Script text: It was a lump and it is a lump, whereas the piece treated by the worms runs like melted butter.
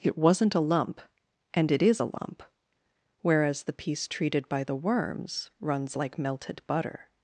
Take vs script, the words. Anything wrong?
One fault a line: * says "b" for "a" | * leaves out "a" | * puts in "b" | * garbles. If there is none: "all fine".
* says "wasn't" for "was"